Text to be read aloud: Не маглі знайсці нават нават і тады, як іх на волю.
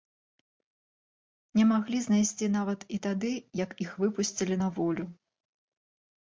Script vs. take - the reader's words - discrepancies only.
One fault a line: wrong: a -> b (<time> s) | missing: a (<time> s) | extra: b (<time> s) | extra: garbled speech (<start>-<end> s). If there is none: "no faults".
missing: нават (2.8 s)
extra: выпусцілі (4.0 s)